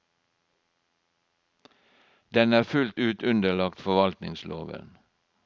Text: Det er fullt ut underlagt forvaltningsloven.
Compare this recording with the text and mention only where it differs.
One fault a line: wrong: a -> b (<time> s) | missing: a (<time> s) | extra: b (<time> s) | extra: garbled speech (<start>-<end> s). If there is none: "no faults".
wrong: Det -> Den (2.3 s)